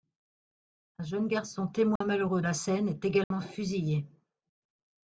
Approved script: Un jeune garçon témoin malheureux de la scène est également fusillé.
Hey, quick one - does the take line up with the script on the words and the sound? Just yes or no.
no